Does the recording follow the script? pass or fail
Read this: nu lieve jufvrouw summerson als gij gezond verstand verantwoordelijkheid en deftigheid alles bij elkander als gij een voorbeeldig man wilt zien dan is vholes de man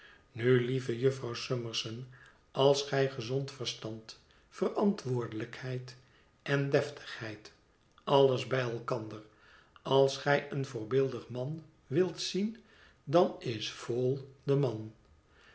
pass